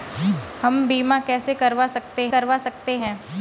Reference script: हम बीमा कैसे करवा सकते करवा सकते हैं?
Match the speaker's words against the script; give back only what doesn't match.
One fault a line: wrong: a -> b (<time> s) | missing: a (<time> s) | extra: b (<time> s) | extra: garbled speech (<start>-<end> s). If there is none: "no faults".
no faults